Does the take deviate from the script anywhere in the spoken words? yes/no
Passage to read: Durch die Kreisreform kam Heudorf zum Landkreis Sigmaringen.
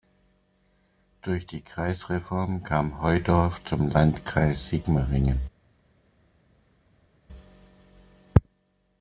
no